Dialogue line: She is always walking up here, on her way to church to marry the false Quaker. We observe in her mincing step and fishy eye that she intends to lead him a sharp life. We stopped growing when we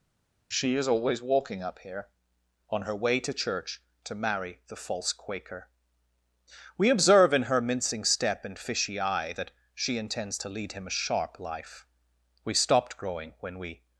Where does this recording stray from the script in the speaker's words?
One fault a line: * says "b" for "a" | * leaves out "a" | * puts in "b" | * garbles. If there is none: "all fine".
all fine